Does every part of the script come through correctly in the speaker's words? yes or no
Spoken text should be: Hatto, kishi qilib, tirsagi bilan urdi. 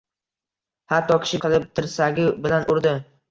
yes